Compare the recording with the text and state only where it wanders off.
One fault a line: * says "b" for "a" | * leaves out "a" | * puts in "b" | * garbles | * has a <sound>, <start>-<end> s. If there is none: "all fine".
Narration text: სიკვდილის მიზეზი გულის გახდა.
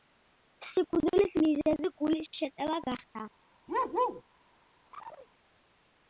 * puts in "შეტევა"
* has a bark, 3.7-4.2 s
* has a chirp, 4.9-5.3 s